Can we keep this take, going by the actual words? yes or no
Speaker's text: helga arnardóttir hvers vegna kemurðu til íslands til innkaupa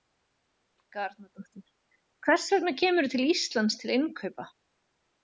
yes